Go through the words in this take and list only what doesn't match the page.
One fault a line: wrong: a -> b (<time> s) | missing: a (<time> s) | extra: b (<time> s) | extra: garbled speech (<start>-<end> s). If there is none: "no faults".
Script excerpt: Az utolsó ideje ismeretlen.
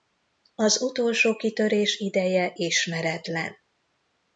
extra: kitörés (1.4 s)